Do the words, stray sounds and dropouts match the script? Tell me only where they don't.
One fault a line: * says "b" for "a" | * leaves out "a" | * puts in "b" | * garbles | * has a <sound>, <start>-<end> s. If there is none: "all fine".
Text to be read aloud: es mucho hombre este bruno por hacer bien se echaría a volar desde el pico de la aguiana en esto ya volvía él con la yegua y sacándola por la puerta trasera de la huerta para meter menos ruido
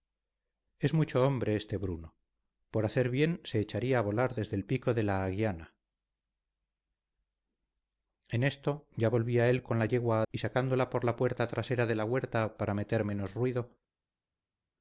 all fine